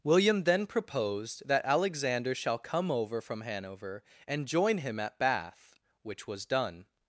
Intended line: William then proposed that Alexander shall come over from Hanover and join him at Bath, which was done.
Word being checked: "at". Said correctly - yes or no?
yes